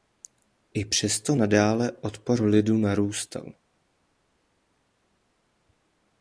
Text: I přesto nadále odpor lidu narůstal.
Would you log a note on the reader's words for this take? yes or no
no